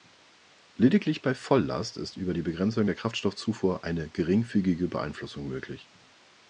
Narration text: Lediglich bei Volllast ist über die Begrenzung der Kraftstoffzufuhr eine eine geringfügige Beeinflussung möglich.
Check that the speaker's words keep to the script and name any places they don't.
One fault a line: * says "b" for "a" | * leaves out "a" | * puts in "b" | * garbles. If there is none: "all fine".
* leaves out "eine"